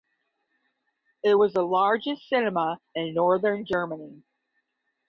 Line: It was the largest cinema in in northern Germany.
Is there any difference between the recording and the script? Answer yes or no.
yes